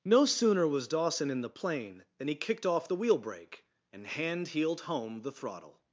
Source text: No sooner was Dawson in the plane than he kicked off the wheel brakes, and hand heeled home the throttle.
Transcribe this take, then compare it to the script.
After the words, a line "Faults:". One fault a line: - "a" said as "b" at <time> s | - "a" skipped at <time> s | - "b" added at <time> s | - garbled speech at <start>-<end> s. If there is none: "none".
No sooner was Dawson in the plane than he kicked off the wheel brake, and hand heeled home the throttle.
Faults:
- "brakes" said as "brake" at 3.2 s